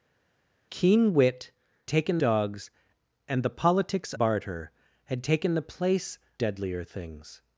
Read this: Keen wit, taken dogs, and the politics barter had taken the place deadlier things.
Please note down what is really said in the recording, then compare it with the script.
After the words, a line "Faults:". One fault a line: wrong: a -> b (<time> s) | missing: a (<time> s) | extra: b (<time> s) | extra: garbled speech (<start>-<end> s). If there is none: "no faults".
Keen wit, taken dogs, and the politics barter had taken the place deadlier things.
Faults:
no faults